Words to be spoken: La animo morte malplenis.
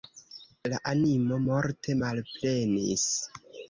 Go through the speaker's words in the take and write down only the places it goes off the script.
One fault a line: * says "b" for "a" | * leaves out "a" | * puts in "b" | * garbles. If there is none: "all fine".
all fine